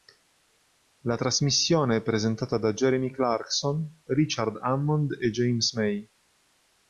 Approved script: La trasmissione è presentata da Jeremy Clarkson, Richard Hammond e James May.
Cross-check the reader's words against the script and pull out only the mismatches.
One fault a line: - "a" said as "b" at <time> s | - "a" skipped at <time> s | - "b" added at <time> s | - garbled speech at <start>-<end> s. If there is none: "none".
none